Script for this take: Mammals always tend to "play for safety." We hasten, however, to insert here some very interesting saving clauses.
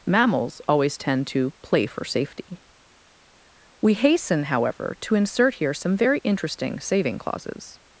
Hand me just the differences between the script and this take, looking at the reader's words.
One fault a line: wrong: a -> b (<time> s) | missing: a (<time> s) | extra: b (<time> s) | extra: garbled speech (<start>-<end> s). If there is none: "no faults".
no faults